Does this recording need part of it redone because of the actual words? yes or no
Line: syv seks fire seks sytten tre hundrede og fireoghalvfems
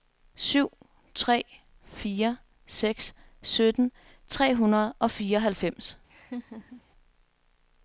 yes